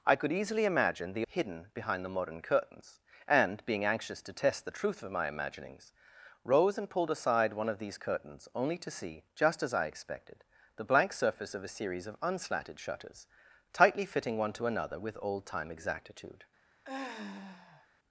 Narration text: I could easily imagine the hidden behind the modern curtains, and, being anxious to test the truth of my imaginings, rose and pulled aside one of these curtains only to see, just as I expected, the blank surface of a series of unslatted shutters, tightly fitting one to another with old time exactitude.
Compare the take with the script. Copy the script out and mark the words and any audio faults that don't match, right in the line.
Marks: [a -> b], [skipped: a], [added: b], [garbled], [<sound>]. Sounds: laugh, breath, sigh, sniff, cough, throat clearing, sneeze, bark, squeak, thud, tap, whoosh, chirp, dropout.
I could easily imagine the hidden behind the modern curtains, and, being anxious to test the truth of my imaginings, rose and pulled aside one of these curtains only to see, just as I expected, the blank surface of a series of unslatted shutters, tightly fitting one to another with old time exactitude. [sigh]